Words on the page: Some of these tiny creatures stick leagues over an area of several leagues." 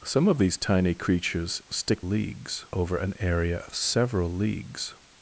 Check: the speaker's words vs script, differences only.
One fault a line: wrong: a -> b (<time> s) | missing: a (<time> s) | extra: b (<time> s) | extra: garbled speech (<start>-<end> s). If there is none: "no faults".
no faults